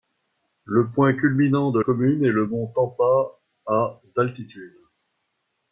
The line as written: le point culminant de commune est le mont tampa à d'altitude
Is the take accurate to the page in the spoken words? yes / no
yes